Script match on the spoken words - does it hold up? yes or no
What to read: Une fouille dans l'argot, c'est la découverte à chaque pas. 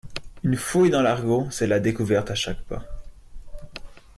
yes